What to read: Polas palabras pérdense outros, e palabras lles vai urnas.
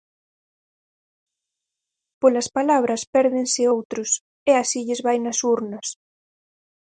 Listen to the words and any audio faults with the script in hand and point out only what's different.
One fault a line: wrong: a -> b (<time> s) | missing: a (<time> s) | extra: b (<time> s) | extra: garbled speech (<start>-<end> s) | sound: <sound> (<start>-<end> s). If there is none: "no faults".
wrong: palabras -> así (4.6 s)
extra: nas (5.2 s)